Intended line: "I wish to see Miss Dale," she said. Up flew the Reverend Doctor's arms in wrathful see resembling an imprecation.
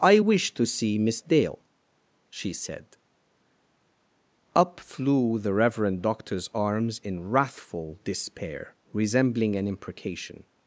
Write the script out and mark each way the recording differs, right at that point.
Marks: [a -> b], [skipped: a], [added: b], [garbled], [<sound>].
"I wish to see Miss Dale," she said. Up flew the Reverend Doctor's arms in wrathful [see -> despair] resembling an imprecation.